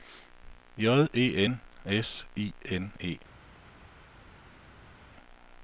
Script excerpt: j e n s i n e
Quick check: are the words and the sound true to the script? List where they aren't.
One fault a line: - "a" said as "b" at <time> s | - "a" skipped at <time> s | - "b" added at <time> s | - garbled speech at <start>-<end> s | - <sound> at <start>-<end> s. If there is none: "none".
none